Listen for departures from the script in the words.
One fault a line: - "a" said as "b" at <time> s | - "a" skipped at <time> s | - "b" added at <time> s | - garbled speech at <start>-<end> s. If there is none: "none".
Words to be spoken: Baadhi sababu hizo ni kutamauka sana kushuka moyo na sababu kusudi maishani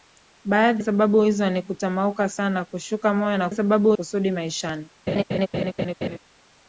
none